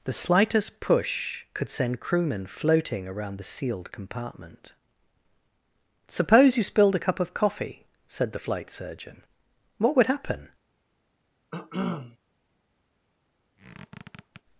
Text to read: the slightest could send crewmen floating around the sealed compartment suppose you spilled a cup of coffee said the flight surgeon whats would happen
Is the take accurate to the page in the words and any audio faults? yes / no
no